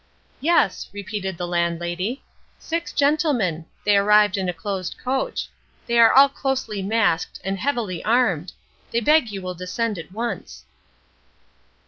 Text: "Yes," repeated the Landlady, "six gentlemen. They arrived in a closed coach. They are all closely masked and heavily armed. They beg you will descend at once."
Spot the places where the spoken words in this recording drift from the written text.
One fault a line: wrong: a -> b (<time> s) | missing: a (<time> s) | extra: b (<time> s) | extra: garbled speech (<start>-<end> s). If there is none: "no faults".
no faults